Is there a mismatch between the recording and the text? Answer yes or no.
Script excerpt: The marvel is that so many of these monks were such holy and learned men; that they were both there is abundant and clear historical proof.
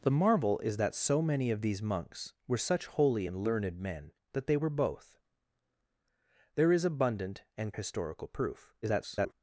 yes